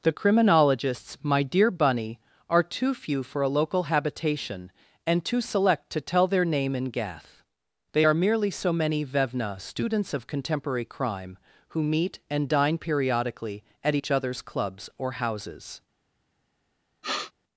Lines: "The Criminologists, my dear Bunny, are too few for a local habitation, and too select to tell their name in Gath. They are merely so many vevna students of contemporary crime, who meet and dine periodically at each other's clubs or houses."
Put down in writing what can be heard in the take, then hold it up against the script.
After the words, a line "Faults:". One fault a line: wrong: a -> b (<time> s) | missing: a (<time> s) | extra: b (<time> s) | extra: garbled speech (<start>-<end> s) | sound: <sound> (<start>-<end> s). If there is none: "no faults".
"The Criminologists, my dear Bunny, are too few for a local habitation, and too select to tell their name in Gath. They are merely so many vevna students of contemporary crime, who meet and dine periodically at each other's clubs or houses."
Faults:
sound: sniff (17.0-17.3 s)